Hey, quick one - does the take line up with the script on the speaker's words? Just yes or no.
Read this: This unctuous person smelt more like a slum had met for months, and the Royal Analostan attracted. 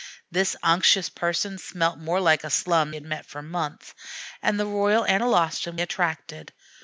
yes